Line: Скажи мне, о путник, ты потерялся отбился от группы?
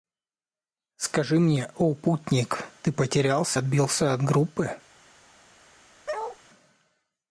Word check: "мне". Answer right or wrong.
right